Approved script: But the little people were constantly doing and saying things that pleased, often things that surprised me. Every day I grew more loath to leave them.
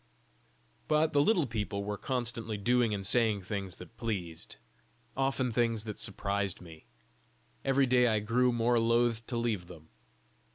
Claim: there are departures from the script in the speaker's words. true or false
false